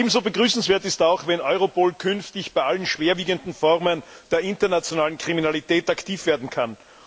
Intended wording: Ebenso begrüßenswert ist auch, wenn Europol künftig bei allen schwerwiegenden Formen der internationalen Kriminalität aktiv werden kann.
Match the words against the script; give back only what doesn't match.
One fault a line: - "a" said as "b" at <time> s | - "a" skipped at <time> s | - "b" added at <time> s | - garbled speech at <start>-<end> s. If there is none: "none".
none